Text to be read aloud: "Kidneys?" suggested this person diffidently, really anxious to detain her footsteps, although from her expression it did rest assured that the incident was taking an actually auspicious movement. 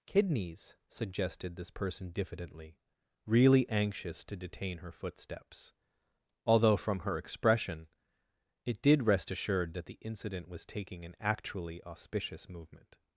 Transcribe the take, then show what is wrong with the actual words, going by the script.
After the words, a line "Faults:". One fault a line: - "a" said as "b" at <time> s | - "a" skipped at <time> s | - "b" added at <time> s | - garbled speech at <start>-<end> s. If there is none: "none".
"Kidneys?" suggested this person diffidently, really anxious to detain her footsteps, although from her expression it did rest assured that the incident was taking an actually auspicious movement.
Faults:
none